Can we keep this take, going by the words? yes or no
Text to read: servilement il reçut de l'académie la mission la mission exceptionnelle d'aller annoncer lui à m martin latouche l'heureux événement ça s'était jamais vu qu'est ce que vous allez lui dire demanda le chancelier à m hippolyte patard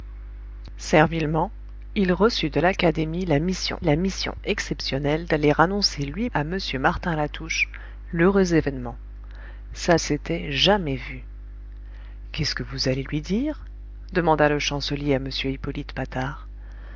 yes